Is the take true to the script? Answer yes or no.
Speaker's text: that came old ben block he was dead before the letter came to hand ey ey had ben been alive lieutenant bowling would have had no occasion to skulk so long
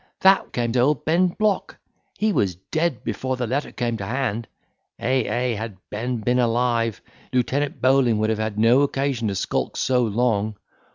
yes